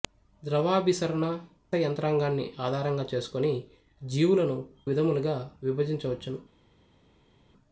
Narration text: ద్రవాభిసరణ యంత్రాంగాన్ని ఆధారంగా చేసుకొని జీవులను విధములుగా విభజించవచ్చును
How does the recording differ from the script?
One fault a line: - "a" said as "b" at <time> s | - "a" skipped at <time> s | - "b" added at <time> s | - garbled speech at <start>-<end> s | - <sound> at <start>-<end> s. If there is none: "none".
none